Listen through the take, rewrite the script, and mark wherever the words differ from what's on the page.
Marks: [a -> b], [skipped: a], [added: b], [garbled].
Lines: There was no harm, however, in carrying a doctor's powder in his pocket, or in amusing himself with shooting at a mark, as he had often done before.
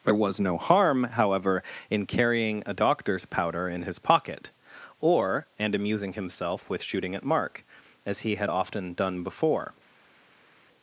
There was no harm, however, in carrying a doctor's powder in his pocket, or [in -> and] amusing himself with shooting at [skipped: a] mark, as he had often done before.